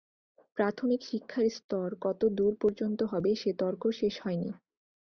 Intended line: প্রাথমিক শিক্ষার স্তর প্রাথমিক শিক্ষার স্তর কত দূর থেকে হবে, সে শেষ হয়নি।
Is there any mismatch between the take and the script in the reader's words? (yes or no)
yes